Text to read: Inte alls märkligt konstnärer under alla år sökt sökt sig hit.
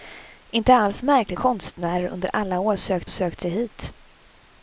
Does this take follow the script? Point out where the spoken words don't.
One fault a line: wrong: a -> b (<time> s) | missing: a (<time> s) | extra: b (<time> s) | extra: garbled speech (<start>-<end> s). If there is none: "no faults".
no faults